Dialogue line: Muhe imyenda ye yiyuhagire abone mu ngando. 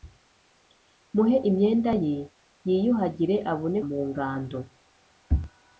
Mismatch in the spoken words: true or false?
false